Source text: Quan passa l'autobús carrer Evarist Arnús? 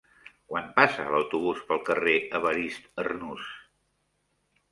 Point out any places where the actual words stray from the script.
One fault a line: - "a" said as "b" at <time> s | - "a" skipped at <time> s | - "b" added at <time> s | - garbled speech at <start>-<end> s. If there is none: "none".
- "pel" added at 1.7 s